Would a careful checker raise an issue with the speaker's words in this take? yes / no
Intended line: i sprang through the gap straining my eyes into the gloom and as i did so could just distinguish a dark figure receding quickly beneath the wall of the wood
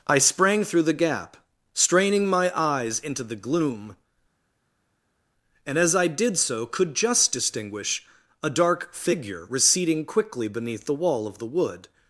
no